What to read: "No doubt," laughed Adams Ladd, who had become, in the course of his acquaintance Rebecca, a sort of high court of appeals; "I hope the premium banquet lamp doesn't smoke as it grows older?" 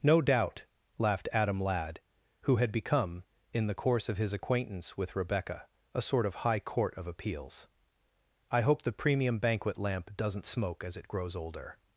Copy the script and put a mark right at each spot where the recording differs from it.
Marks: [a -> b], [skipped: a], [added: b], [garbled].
"No doubt," laughed [Adams -> Adam] Ladd, who had become, in the course of his acquaintance [added: with] Rebecca, a sort of high court of appeals; "I hope the premium banquet lamp doesn't smoke as it grows older?"